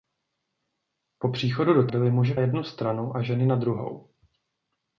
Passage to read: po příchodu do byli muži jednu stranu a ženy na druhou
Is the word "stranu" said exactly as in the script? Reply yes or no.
yes